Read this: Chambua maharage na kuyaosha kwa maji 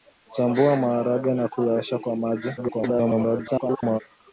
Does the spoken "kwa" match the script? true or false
true